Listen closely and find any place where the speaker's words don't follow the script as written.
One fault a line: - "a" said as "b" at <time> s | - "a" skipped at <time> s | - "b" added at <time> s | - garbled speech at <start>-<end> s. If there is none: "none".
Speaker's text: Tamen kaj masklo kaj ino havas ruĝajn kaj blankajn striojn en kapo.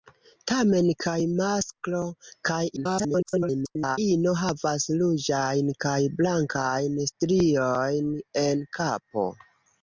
- garbled speech at 2.8-4.0 s